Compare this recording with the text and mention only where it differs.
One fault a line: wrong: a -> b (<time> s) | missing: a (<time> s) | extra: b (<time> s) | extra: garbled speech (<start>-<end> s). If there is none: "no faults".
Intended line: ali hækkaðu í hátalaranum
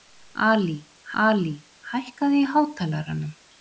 extra: ali (1.2 s)